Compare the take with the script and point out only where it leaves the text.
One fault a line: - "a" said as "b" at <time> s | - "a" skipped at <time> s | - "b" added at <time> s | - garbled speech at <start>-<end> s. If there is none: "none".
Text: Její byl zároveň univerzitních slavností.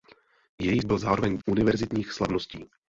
none